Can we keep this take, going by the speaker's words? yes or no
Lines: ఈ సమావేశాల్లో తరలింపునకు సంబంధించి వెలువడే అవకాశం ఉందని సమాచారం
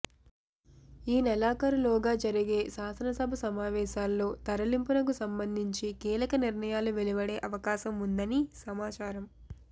no